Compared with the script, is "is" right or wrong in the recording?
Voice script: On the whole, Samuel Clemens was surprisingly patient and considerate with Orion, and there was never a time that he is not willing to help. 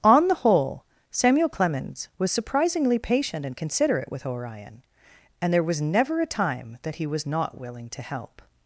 wrong